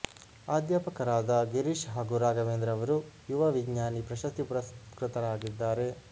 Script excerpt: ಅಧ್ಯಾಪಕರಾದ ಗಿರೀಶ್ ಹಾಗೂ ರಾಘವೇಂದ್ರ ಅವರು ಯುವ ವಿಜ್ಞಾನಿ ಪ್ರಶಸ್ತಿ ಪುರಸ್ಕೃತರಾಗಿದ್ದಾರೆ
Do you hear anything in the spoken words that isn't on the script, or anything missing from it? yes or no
no